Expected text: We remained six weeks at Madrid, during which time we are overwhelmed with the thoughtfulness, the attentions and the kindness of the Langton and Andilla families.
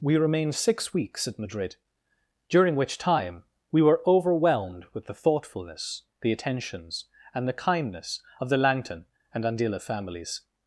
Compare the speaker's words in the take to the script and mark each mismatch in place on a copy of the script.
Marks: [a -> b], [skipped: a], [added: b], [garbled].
We remained six weeks at Madrid, during which time we [are -> were] overwhelmed with the thoughtfulness, the attentions and the kindness of the Langton and Andilla families.